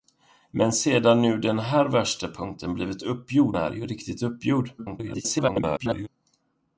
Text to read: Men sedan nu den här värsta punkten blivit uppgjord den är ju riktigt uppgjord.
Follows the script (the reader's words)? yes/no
no